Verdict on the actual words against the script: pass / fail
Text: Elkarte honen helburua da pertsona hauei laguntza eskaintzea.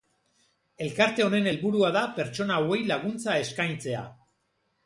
pass